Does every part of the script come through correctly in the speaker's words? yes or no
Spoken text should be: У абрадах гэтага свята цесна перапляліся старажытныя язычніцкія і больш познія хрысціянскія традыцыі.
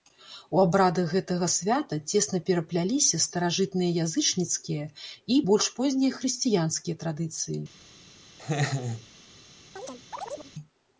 yes